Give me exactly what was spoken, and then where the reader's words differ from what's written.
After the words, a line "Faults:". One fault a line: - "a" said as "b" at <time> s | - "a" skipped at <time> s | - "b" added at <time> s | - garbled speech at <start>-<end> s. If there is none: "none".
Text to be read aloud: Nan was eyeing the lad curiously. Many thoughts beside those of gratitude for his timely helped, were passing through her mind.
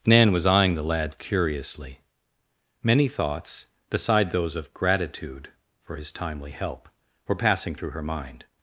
Nan was eyeing the lad curiously. Many thoughts beside those of gratitude for his timely help, were passing through her mind.
Faults:
- "helped" said as "help" at 6.5 s